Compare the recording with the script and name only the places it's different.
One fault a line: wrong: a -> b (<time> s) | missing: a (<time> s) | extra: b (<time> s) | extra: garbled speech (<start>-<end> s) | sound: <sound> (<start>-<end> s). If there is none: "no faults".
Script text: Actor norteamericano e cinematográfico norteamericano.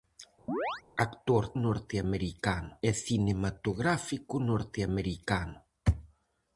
sound: chirp (0.5-0.8 s)